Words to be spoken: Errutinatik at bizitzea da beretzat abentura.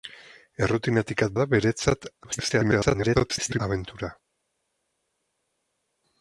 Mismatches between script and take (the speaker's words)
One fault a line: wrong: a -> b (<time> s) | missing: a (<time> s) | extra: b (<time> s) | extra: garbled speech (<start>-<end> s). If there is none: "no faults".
missing: bizitzea (1.4 s)
extra: garbled speech (2.2-3.6 s)